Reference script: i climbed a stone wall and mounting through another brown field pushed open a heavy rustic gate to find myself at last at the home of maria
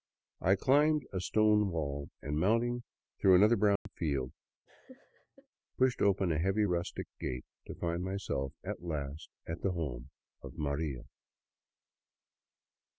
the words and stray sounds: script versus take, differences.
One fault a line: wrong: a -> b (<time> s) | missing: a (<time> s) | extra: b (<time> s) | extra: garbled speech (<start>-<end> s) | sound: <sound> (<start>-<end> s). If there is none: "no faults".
sound: dropout (3.8-3.9 s)
sound: laugh (4.7-5.5 s)